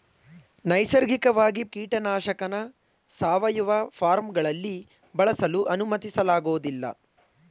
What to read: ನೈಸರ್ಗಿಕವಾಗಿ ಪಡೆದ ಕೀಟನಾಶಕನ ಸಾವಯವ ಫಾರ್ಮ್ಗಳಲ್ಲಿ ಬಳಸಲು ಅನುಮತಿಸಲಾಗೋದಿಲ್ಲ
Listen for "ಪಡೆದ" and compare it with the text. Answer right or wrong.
wrong